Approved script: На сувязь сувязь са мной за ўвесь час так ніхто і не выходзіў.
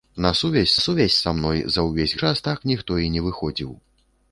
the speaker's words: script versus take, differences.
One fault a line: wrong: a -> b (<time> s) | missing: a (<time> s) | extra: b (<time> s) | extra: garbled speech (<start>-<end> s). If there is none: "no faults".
no faults